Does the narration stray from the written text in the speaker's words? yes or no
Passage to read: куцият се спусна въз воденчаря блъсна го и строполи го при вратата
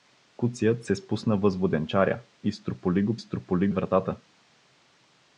yes